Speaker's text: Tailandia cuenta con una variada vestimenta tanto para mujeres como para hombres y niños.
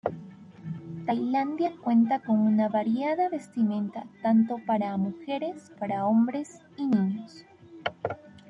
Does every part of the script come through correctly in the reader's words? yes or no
no